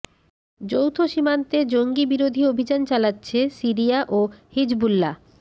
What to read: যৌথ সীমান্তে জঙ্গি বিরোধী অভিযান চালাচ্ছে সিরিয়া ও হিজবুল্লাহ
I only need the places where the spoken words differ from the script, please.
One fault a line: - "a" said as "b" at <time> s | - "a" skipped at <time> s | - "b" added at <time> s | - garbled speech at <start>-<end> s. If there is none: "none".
none